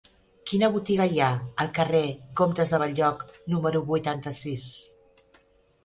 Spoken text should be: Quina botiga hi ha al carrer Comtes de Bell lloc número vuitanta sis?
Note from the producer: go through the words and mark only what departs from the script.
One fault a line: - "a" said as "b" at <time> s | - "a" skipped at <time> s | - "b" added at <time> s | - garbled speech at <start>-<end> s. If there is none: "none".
none